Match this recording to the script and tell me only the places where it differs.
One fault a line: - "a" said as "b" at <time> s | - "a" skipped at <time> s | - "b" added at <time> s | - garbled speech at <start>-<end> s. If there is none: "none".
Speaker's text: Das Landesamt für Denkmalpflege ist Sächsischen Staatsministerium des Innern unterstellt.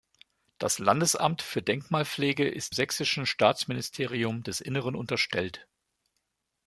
none